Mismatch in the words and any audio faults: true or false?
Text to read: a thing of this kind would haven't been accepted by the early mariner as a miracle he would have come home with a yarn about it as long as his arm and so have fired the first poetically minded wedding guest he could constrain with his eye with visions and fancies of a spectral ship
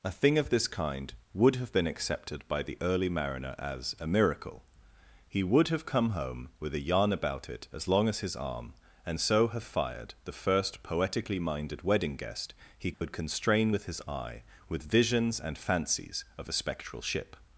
true